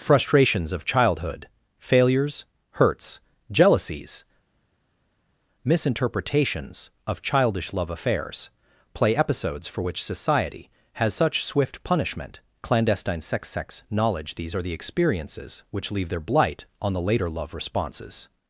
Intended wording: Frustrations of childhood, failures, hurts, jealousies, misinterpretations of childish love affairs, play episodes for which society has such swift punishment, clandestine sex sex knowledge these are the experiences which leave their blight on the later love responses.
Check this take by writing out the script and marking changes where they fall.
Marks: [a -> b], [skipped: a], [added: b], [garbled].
Frustrations of childhood, failures, hurts, jealousies, misinterpretations of childish love affairs, play episodes for which society has such swift punishment, clandestine sex sex knowledge these are the experiences which leave their blight on the later love responses.